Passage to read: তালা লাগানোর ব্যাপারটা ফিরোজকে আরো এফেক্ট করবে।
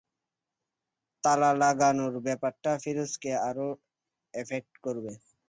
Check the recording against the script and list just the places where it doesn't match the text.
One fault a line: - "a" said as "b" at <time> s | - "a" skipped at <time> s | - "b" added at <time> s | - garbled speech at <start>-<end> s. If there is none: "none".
none